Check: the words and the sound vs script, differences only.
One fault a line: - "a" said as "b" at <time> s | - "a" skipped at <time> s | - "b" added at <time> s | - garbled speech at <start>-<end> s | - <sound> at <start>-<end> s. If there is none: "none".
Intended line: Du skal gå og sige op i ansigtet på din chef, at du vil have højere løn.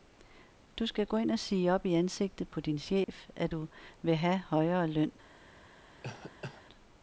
- "ind" added at 1.2 s
- dropout at 3.0-3.1 s
- cough at 6.0-6.6 s